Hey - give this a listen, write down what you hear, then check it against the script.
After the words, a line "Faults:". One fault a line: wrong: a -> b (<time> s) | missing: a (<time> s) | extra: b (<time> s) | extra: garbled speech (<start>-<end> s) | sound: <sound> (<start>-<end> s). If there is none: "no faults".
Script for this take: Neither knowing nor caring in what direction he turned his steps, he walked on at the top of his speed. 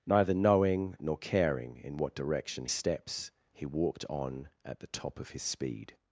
Neither knowing nor caring in what direction steps, he walked on at the top of his speed.
Faults:
missing: he turned his (2.7 s)